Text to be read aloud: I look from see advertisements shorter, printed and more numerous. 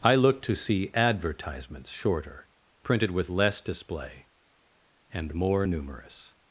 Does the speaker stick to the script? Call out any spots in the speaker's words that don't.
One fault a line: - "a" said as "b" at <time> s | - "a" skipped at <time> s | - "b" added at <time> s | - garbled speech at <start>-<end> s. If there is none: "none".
- "from" said as "to" at 0.4 s
- "with less display" added at 3.1 s